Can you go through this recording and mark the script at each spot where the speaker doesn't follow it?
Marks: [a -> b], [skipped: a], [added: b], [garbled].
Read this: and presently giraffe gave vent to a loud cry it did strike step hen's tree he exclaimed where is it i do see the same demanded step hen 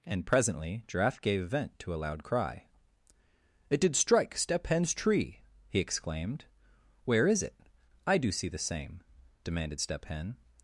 and presently giraffe gave vent to a loud cry it did strike step hen's tree he exclaimed where is it i do see the same demanded step hen